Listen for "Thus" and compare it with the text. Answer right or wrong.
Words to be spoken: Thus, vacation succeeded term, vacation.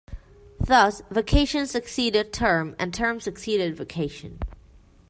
right